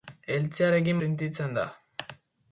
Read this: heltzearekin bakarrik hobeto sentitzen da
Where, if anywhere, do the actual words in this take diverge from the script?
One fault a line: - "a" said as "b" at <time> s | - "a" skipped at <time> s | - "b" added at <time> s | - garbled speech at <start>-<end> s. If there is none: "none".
- "bakarrik hobeto" skipped at 1.0 s